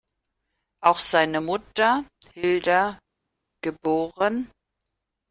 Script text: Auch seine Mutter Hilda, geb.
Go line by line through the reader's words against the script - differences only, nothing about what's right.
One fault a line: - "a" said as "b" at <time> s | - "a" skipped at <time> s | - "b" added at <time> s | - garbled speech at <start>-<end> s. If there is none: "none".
none